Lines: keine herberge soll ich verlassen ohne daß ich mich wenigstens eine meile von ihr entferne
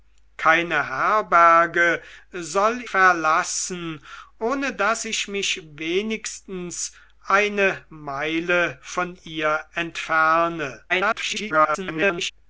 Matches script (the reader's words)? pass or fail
fail